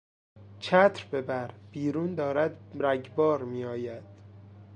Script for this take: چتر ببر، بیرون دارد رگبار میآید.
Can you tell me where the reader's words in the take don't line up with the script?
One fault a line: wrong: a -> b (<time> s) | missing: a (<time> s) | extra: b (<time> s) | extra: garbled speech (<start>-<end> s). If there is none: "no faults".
no faults